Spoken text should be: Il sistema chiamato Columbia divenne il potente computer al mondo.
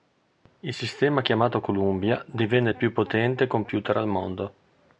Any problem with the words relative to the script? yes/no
yes